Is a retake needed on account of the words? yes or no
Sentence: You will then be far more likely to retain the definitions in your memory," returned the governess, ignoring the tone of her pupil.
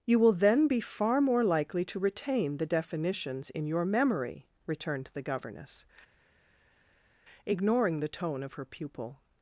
no